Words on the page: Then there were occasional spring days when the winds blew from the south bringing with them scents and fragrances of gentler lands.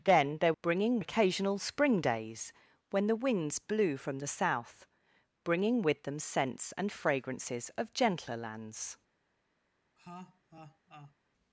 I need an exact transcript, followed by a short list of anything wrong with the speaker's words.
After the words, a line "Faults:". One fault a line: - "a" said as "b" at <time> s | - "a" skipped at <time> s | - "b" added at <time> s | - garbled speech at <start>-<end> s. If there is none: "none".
Then there bringing occasional spring days when the winds blew from the south bringing with them scents and fragrances of gentler lands.
Faults:
- "were" said as "bringing" at 0.6 s